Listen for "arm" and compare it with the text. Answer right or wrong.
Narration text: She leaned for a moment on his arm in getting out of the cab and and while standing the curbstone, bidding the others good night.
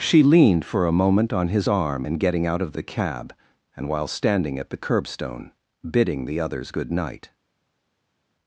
right